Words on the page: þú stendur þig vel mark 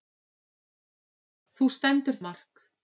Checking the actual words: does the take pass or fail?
fail